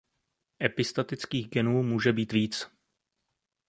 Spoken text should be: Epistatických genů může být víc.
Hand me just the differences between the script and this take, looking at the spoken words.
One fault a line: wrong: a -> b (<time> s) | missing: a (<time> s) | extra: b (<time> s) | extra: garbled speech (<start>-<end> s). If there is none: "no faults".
no faults